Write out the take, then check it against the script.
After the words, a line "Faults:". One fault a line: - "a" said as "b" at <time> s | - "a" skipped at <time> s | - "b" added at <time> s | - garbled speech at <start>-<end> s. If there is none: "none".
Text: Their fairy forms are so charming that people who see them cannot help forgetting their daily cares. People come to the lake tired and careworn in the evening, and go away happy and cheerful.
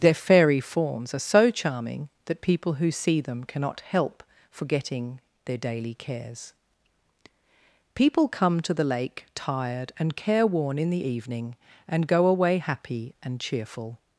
Their fairy forms are so charming that people who see them cannot help forgetting their daily cares. People come to the lake tired and careworn in the evening, and go away happy and cheerful.
Faults:
none